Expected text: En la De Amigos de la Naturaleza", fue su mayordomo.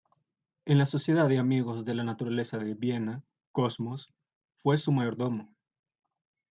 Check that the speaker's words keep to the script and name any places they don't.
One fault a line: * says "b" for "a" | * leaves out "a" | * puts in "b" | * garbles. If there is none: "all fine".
* puts in "Sociedad"
* puts in "de Viena Cosmos"